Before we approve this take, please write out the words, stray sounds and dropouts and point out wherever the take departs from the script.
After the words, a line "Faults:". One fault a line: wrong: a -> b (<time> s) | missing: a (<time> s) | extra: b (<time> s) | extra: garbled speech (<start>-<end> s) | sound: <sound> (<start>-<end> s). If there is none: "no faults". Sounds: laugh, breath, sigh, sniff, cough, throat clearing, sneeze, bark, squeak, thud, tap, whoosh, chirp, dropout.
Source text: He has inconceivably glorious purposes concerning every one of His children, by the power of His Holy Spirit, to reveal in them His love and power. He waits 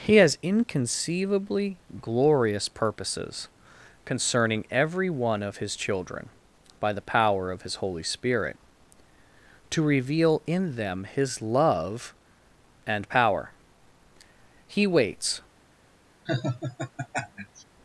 He has inconceivably glorious purposes concerning every one of His children, by the power of His Holy Spirit, to reveal in them His love and power. He waits
Faults:
sound: laugh (16.3-17.6 s)